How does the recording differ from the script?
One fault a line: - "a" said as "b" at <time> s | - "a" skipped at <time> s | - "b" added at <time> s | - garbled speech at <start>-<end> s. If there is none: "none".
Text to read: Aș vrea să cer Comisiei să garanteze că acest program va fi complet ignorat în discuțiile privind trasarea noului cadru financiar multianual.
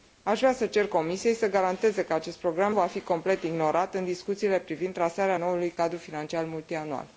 none